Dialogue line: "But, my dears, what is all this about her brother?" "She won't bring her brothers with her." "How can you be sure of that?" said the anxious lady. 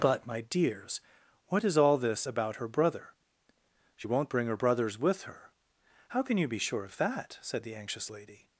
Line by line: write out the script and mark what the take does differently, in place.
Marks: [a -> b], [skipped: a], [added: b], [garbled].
"But, my dears, what is all this about her brother?" "She won't bring her brothers with her." "How can you be sure of that?" said the anxious lady.